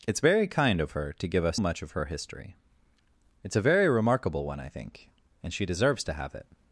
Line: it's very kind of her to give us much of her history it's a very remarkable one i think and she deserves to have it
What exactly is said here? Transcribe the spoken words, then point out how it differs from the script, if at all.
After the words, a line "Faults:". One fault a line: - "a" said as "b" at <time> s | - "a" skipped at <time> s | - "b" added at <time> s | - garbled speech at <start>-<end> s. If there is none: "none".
it's very kind of her to give us much of her history it's a very remarkable one i think and she deserves to have it
Faults:
none